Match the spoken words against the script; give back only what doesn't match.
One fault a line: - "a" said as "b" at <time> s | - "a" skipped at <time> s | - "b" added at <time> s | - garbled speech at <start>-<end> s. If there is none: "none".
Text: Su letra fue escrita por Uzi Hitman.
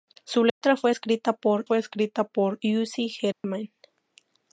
- "fue escrita por" added at 1.6 s